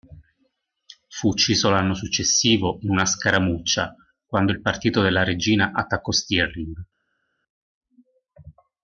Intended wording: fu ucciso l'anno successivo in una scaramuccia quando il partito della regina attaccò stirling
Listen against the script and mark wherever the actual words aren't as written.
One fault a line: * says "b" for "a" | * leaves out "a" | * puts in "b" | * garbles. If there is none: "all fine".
all fine